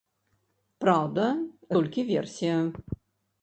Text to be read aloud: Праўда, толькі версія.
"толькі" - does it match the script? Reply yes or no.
yes